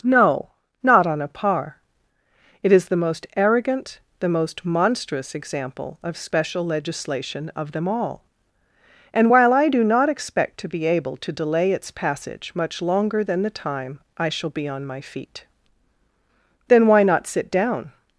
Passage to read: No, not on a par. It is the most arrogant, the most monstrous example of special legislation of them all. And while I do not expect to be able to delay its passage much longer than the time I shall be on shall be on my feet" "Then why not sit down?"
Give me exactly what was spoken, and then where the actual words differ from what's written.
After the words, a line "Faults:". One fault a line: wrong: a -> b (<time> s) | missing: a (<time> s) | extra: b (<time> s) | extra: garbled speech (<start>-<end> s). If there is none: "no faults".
No, not on a par. It is the most arrogant, the most monstrous example of special legislation of them all. And while I do not expect to be able to delay its passage much longer than the time I shall be on my feet" "Then why not sit down?"
Faults:
missing: shall be on (14.9 s)